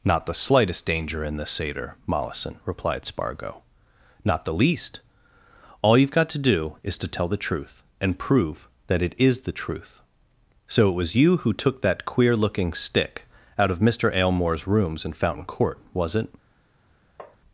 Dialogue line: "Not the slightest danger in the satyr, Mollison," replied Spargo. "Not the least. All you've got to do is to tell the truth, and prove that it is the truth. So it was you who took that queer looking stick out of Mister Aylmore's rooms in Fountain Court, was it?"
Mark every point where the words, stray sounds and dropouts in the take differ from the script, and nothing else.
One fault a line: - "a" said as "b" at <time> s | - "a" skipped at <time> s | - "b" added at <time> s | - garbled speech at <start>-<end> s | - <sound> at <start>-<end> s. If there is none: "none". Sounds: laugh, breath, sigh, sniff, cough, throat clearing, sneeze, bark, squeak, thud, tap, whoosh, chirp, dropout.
- tap at 17.2-17.4 s